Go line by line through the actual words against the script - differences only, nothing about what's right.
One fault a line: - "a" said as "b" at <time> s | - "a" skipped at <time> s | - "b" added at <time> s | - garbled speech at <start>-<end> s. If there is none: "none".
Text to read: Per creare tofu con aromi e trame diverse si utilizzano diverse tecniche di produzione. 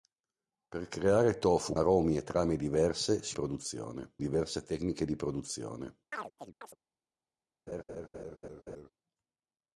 - "con" skipped at 1.8 s
- "utilizzano" said as "produzione" at 3.3 s